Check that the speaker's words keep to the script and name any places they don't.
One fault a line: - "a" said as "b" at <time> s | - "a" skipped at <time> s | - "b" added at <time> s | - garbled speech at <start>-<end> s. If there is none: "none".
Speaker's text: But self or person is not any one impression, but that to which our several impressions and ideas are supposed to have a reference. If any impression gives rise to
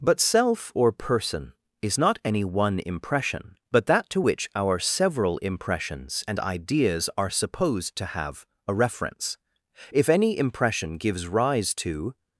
none